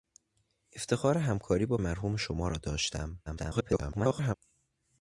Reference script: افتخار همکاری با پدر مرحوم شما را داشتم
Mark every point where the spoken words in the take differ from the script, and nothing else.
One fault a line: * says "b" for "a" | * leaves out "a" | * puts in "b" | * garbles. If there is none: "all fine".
* leaves out "پدر"
* garbles